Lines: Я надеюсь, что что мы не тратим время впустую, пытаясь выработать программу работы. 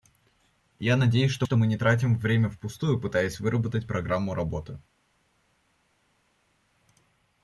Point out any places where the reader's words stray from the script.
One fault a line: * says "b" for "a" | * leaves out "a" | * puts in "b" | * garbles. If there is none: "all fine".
all fine